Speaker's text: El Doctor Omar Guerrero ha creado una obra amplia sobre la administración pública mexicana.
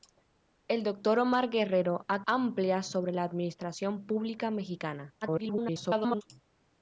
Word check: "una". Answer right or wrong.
wrong